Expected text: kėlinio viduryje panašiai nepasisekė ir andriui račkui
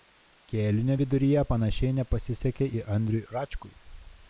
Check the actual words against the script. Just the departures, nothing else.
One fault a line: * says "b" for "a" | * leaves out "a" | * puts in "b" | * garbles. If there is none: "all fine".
all fine